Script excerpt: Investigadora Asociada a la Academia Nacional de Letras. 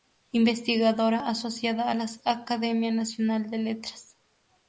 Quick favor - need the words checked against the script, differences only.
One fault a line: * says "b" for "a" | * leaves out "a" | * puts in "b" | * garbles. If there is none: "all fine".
all fine